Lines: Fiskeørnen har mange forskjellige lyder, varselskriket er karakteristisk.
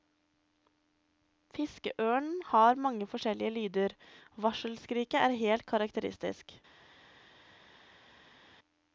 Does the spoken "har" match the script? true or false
true